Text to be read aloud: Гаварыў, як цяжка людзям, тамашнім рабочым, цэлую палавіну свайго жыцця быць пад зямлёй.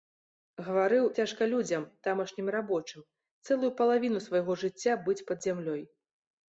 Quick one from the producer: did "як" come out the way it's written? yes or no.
no